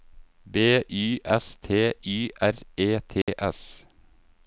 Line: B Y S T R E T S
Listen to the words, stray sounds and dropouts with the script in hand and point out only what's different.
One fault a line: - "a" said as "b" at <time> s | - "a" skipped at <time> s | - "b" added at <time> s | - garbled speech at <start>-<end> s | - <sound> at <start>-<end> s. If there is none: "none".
- "Y" added at 2.0 s
- dropout at 3.2-3.3 s